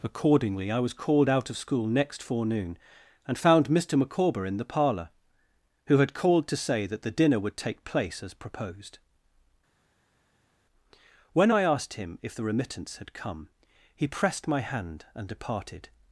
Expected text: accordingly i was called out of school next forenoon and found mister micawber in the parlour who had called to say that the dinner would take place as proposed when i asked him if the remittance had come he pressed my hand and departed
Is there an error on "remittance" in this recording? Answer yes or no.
no